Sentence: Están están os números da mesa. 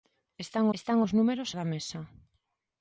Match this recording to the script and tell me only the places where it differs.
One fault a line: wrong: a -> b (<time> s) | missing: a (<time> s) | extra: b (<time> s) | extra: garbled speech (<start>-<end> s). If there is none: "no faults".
no faults